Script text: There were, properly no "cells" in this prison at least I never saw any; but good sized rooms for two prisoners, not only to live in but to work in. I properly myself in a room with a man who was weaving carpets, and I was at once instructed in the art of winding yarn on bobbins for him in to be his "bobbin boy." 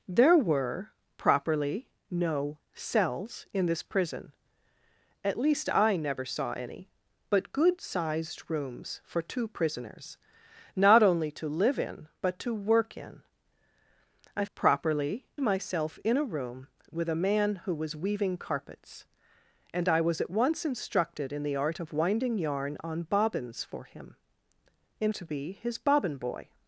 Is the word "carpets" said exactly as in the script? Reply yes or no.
yes